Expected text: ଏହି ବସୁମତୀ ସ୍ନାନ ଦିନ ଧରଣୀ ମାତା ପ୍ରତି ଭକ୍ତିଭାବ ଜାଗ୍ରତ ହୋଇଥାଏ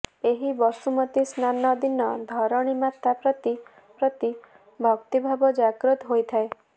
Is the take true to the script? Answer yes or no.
no